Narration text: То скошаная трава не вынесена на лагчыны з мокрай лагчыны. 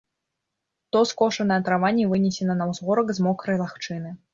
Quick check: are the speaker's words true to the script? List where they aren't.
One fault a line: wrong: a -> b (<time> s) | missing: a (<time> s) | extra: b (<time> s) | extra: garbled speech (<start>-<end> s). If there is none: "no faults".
wrong: лагчыны -> ўзгорак (2.8 s)